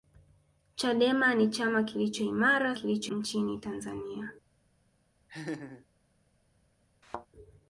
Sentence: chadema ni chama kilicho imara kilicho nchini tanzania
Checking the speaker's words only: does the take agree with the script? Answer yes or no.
yes